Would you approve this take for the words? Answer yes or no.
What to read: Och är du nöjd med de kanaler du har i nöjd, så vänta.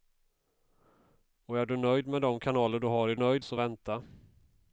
yes